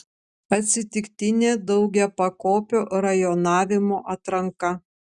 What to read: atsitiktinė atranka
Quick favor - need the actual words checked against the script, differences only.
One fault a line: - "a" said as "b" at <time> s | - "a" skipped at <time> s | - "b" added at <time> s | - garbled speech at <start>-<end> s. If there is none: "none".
- "daugiapakopio rajonavimo" added at 1.7 s